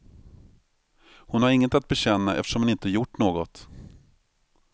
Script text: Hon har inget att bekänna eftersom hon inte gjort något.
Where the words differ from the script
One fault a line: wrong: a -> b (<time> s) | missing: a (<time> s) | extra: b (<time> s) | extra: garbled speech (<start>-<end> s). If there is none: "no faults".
no faults